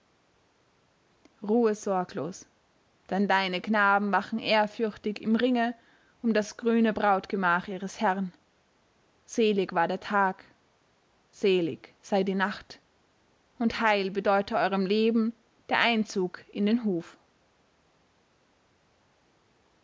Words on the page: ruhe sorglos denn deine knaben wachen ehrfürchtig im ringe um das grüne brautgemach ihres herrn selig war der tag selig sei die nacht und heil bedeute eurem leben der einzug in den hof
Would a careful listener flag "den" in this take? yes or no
no